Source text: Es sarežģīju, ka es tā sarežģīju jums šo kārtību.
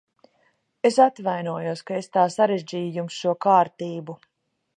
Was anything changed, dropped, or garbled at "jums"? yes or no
no